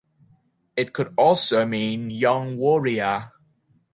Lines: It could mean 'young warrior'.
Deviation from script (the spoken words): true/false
true